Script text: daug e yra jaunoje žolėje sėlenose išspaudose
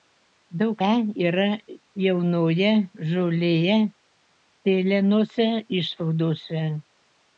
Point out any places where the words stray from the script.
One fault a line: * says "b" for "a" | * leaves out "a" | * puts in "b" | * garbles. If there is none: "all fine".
all fine